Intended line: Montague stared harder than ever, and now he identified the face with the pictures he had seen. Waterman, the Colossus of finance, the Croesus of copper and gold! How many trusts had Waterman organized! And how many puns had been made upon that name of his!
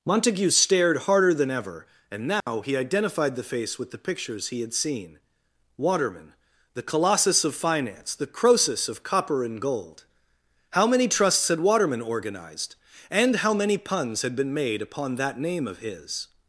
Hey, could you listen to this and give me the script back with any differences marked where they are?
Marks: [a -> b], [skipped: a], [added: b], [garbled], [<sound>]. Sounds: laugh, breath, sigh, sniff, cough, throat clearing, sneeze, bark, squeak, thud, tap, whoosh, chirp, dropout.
Montague stared harder than ever, and now [dropout] he identified the face with the pictures he had seen. Waterman, the Colossus of finance, the Croesus of copper and gold! How many trusts had Waterman organized! And how many puns had been made upon that name of his!